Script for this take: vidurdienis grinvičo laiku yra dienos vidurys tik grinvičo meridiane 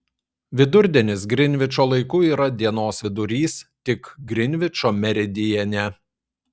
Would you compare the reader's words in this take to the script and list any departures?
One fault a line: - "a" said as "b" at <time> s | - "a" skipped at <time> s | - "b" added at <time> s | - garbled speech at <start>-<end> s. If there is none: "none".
none